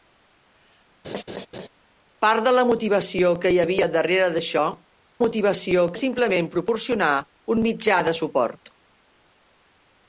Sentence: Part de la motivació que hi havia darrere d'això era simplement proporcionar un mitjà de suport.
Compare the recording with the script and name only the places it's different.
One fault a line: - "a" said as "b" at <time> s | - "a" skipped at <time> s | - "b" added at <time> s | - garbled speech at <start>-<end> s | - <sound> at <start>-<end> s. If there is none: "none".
- laugh at 1.0-1.7 s
- "era" said as "motivació" at 5.2 s